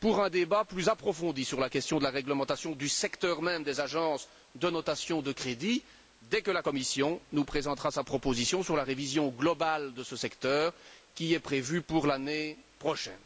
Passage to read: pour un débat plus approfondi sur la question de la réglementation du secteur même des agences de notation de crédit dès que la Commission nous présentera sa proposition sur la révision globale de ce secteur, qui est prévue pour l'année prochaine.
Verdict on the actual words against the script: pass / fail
pass